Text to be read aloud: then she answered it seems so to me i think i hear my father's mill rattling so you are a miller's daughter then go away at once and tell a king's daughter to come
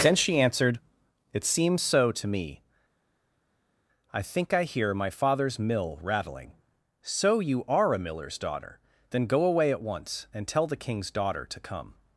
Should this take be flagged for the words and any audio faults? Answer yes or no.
yes